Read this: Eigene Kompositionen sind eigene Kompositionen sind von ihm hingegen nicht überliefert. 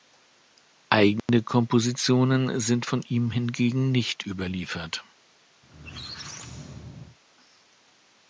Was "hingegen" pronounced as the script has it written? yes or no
yes